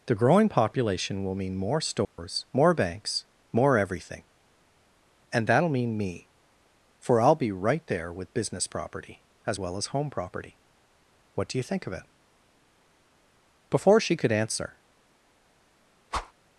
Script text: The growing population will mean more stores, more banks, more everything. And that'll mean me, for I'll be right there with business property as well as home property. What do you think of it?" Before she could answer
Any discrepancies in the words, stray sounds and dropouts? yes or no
yes